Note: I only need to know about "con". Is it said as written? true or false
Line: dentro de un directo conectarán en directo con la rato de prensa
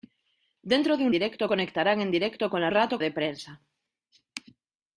true